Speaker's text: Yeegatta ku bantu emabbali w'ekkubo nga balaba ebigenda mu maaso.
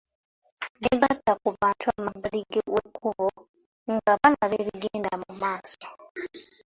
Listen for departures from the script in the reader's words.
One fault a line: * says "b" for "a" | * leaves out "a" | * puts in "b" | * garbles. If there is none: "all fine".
all fine